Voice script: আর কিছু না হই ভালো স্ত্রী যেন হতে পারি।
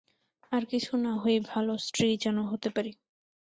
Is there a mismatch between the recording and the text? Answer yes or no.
no